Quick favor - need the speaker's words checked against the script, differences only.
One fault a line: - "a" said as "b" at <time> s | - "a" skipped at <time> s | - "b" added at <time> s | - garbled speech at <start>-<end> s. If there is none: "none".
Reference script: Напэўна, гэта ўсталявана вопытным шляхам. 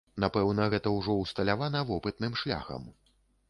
- "ўжо" added at 1.0 s